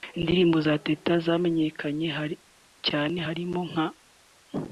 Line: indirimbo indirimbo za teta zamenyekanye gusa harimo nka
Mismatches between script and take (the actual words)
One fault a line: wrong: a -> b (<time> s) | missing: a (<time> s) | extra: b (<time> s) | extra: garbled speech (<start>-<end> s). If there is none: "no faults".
missing: indirimbo (0.6 s)
wrong: gusa -> cyane (2.9 s)